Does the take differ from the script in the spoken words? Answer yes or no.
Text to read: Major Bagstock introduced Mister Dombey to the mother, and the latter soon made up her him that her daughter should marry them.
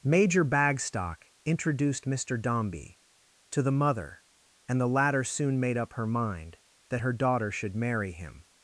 yes